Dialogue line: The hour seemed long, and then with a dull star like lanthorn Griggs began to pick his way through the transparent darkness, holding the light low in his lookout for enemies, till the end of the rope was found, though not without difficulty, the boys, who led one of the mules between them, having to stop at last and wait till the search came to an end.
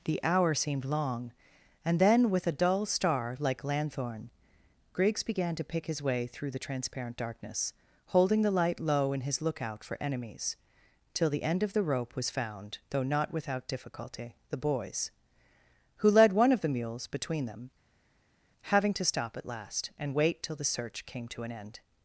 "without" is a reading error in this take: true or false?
false